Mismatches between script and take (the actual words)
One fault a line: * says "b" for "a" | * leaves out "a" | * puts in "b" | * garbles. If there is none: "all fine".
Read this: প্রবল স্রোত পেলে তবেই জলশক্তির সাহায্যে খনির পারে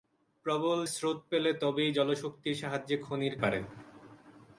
all fine